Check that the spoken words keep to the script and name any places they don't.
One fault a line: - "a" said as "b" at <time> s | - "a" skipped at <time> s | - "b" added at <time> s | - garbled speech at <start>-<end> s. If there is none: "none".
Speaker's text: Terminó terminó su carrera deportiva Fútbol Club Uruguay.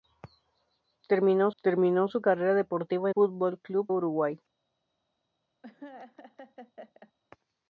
none